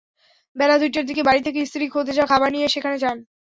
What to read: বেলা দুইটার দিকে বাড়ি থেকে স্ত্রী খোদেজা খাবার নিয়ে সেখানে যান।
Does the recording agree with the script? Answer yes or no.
yes